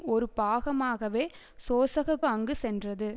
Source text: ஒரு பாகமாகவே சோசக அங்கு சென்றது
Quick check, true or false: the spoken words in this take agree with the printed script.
true